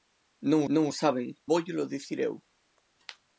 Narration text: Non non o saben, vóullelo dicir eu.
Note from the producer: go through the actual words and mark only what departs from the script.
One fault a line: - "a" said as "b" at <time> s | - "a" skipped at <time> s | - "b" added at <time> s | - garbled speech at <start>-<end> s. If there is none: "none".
none